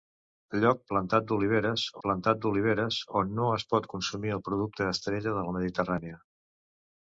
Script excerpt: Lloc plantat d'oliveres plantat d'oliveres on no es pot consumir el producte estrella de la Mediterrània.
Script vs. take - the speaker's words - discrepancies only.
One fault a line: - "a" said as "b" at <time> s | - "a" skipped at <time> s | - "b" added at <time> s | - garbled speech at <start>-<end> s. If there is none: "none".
none